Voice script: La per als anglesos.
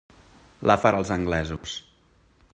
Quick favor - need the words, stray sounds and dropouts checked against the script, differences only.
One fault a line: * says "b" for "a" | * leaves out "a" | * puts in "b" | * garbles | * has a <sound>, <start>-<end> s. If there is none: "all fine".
* has a dropout, 1.6-1.6 s